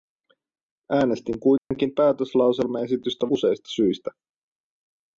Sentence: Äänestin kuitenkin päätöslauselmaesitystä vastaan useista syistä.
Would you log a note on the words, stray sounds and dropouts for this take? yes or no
yes